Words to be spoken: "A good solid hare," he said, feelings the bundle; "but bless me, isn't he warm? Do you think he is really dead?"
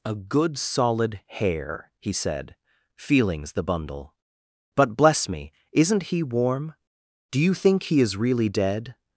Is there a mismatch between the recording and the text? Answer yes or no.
no